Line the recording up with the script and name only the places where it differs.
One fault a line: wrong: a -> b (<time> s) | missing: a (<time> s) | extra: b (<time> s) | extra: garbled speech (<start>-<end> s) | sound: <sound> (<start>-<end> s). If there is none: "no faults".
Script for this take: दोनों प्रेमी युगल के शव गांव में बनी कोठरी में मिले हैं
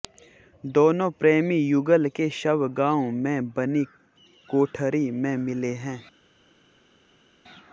no faults